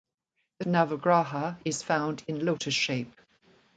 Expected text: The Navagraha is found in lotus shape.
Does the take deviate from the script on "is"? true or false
false